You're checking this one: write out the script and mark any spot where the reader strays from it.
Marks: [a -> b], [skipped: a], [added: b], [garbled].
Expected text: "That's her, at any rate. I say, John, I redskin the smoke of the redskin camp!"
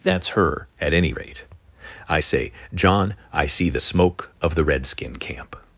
"That's her, at any rate. I say, John, I [redskin -> see] the smoke of the redskin camp!"